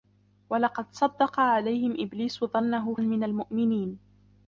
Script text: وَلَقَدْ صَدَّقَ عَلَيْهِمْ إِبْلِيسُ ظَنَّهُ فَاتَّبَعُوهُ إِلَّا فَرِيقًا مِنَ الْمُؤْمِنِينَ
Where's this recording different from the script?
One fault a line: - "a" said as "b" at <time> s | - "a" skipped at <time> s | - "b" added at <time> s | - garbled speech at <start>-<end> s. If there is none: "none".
- "فَاتَّبَعُوهُ إِلَّا فَرِيقًا" skipped at 3.0 s